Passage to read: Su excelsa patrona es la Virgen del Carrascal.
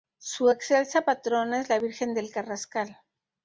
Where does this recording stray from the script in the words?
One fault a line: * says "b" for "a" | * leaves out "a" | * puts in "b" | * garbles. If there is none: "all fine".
all fine